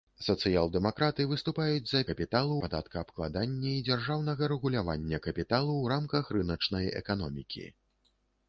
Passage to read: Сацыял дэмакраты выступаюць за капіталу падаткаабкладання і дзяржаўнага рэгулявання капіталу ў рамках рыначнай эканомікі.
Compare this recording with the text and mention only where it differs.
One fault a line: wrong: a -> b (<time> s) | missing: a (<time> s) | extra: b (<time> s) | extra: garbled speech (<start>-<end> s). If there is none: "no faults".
no faults